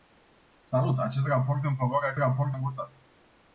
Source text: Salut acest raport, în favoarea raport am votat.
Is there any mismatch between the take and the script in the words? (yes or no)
no